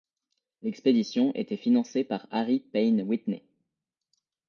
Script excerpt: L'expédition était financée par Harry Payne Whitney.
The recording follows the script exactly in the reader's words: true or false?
true